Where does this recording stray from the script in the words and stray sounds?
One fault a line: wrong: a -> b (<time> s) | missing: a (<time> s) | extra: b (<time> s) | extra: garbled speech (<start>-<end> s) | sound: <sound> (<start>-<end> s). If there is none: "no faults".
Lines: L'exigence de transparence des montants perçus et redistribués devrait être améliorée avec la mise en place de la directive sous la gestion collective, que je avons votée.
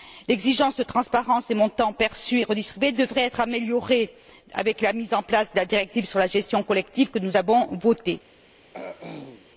wrong: sous -> sur (6.1 s)
wrong: je -> nous (7.2 s)
sound: throat clearing (8.7-9.5 s)